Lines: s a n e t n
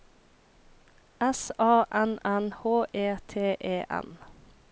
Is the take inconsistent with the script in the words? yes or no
yes